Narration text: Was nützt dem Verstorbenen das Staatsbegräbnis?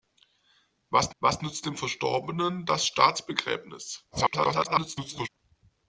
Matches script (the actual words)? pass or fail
fail